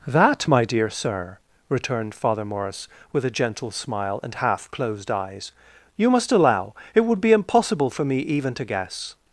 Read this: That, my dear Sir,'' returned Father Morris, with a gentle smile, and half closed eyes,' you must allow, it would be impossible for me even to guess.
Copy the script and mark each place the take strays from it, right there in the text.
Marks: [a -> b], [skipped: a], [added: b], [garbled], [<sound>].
That, my dear Sir,'' returned Father Morris, with a gentle smile, and half closed eyes,' you must allow, it would be impossible for me even to guess.